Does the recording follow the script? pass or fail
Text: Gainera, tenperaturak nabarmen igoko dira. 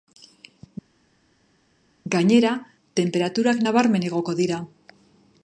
pass